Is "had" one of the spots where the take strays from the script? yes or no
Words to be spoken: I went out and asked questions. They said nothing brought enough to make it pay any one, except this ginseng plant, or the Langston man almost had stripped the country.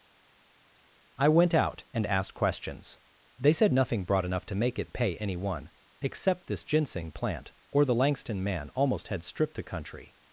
no